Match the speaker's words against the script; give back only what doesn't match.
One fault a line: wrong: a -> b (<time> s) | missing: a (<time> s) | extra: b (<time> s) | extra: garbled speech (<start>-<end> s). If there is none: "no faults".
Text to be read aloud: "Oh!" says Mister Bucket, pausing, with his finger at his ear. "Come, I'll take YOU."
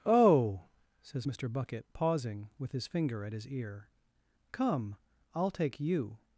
no faults